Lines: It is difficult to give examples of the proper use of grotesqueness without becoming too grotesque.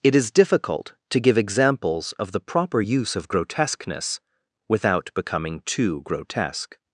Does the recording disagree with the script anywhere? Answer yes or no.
no